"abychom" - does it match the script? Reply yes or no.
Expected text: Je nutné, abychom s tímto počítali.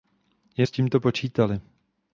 no